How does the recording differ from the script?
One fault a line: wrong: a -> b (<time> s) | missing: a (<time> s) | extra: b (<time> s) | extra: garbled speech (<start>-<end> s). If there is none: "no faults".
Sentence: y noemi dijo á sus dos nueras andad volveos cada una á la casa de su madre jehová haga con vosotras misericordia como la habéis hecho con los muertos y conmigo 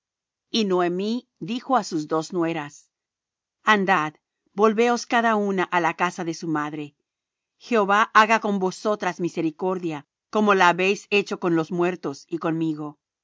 no faults